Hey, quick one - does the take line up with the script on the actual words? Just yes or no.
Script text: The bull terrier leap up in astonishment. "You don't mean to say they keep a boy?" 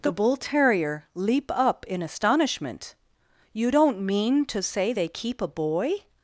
yes